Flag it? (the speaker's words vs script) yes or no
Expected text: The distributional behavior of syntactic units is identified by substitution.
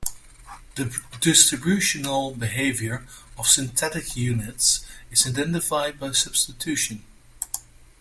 no